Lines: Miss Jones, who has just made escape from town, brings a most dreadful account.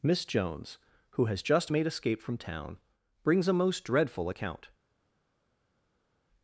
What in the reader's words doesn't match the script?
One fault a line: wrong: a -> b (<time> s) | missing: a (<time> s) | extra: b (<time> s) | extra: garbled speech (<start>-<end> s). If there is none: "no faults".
no faults